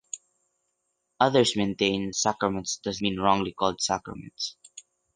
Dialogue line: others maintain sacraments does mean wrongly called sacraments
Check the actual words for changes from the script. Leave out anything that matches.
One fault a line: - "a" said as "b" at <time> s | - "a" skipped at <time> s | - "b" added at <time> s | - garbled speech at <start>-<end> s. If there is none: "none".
none